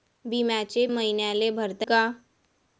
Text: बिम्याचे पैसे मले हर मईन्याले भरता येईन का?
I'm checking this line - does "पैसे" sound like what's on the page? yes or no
no